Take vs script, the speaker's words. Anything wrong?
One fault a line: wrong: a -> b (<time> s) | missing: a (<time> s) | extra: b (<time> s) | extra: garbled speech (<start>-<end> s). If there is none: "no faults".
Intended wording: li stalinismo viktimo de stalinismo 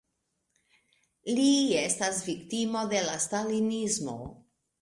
wrong: stalinismo -> estas (1.8 s)
extra: la (3.1 s)